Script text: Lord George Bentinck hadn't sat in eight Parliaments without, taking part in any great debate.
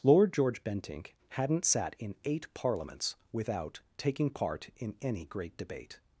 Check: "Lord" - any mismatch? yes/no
no